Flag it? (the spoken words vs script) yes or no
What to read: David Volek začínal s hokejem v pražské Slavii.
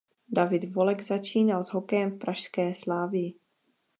no